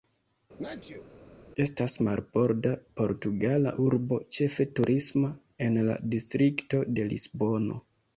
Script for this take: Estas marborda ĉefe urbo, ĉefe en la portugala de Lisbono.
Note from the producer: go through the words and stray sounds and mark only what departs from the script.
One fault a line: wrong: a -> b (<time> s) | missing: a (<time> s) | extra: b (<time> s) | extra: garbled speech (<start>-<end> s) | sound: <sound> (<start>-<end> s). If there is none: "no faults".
sound: sneeze (0.6-1.1 s)
wrong: ĉefe -> portugala (3.0 s)
extra: turisma (4.8 s)
wrong: portugala -> distrikto (6.2 s)